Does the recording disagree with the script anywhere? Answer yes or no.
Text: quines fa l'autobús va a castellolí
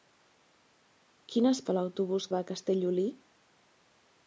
no